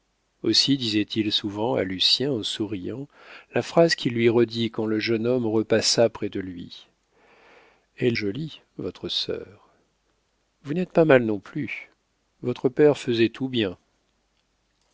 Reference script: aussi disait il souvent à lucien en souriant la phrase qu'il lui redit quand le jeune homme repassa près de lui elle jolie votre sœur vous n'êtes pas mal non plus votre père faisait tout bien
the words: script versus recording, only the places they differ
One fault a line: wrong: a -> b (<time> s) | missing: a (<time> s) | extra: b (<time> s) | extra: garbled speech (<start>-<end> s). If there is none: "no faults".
no faults